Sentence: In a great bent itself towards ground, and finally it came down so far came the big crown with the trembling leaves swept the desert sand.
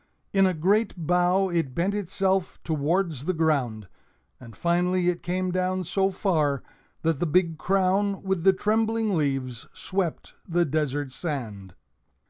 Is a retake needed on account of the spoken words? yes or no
yes